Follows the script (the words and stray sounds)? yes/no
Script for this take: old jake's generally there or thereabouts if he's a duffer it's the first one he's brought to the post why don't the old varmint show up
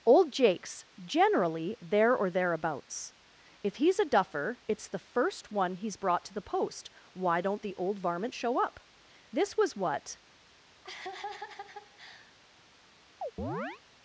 no